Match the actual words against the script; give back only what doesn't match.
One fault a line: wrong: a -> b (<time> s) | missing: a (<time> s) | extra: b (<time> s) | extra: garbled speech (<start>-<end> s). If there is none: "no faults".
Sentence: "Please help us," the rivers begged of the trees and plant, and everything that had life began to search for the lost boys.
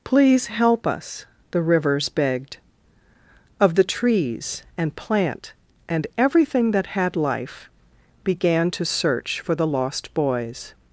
no faults